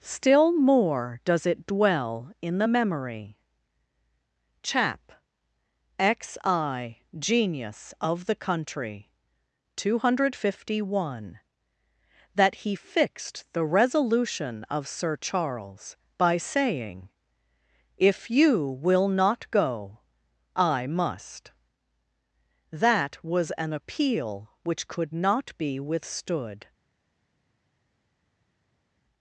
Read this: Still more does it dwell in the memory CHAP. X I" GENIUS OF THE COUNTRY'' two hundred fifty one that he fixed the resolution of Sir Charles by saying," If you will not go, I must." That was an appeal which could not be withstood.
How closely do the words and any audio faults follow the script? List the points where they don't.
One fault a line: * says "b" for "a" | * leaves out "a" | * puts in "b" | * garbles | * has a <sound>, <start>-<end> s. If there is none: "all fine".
all fine